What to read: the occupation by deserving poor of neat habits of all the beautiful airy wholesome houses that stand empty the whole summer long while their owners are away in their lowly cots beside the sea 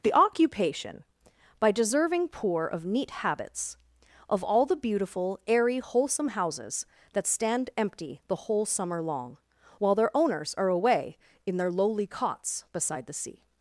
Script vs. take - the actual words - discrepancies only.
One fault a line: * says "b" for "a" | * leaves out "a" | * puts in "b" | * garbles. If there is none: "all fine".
all fine